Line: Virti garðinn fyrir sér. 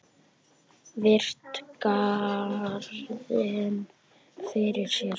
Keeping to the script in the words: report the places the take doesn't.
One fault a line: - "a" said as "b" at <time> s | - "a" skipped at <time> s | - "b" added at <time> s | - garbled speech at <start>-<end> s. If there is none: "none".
none